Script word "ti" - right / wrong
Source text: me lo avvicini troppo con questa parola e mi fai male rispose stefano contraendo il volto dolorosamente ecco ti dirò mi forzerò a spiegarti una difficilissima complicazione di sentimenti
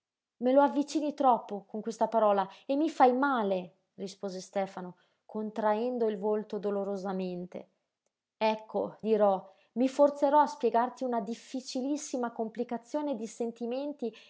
wrong